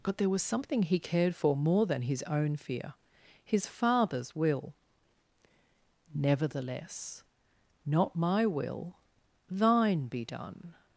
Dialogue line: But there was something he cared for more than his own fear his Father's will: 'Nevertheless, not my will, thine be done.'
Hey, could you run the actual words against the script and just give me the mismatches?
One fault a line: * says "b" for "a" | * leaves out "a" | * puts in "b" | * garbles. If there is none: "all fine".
all fine